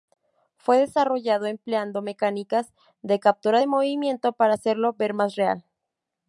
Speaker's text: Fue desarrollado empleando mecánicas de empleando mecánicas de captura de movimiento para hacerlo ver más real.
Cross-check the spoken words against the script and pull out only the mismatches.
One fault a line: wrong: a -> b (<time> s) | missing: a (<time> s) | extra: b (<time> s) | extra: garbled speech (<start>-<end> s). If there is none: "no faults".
missing: empleando mecánicas de (3.2 s)